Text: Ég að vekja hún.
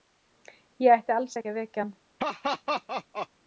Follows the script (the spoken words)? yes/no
no